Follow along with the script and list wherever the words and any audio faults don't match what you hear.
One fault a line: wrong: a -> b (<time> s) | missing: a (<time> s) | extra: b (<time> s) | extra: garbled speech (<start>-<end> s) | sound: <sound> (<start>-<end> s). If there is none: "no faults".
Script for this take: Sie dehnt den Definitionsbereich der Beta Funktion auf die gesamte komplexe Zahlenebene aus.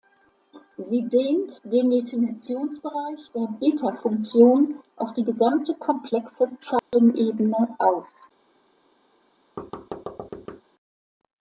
sound: dropout (6.8-6.9 s)
sound: thud (9.6-10.6 s)